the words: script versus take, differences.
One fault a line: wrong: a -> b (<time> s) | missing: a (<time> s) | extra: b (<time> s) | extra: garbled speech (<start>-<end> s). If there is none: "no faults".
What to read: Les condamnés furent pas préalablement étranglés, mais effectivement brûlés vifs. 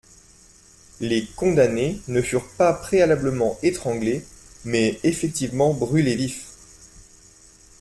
extra: ne (2.1 s)